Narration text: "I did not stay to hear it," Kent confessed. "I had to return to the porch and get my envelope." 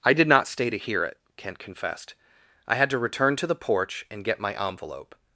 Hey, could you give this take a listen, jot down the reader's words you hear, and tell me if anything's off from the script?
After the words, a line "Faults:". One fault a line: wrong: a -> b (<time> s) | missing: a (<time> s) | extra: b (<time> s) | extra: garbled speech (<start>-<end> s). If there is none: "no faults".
"I did not stay to hear it," Kent confessed. "I had to return to the porch and get my envelope."
Faults:
no faults